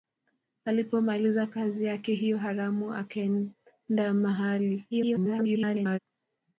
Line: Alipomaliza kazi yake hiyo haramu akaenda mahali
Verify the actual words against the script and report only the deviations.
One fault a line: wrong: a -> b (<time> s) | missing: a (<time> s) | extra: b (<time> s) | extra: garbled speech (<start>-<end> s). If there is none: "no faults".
extra: garbled speech (4.9-6.0 s)